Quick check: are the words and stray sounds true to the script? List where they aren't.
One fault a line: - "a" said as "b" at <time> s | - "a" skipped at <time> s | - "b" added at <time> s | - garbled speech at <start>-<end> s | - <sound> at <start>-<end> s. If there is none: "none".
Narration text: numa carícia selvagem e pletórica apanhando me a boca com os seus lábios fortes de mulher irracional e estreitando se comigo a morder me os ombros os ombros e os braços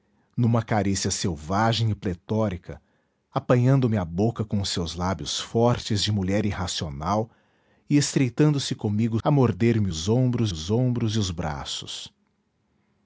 none